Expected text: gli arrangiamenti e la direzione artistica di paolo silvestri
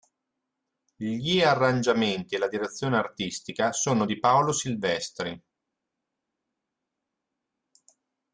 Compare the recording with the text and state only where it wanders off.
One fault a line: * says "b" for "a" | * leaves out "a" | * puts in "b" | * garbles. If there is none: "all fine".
* puts in "sono"